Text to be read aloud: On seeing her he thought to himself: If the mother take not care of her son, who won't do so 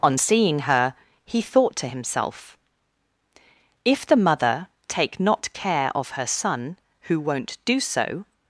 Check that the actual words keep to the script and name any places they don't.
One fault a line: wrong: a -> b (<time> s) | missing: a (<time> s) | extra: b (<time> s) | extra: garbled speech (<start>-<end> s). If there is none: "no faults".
no faults